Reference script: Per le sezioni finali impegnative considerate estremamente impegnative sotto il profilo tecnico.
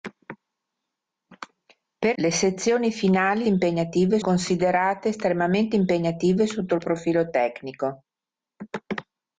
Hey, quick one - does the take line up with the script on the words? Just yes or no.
yes